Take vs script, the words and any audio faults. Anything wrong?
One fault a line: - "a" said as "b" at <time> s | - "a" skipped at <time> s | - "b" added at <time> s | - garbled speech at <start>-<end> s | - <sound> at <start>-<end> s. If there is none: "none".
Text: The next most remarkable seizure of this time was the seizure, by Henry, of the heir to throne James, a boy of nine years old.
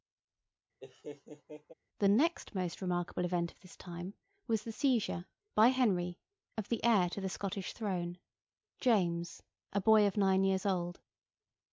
- laugh at 0.8-1.7 s
- "seizure" said as "event" at 3.2 s
- "the Scottish" added at 7.2 s